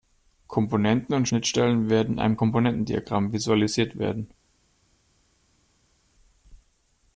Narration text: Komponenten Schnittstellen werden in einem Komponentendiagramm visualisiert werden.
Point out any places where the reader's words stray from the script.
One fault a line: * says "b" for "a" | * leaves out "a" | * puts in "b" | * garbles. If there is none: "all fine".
* puts in "und"